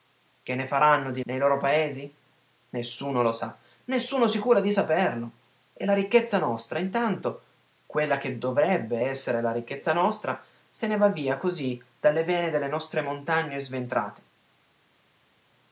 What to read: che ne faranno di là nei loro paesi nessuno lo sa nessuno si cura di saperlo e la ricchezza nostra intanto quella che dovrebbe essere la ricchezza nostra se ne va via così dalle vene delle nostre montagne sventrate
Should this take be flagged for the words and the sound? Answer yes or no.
yes